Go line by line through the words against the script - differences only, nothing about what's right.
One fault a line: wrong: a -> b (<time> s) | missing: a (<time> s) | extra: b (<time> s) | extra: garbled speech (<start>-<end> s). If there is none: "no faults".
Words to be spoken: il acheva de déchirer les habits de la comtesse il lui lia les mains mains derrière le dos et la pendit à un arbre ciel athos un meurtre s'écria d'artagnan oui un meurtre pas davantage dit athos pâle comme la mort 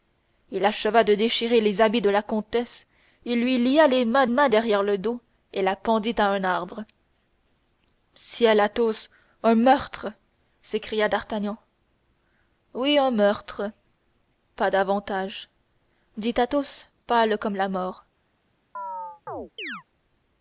no faults